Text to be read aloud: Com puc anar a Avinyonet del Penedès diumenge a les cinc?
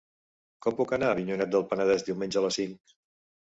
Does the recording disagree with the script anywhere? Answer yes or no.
no